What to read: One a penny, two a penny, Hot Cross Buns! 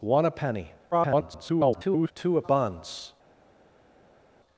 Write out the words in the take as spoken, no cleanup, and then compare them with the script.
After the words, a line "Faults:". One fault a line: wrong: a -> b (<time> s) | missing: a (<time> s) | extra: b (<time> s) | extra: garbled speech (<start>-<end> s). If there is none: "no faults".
One a penny, [garbled] two a Buns!
Faults:
extra: garbled speech (0.9-2.1 s)
missing: penny Hot Cross (2.4 s)